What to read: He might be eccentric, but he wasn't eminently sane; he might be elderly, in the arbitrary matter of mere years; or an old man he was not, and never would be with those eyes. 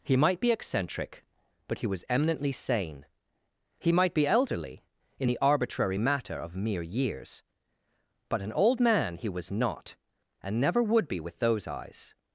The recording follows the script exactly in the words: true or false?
false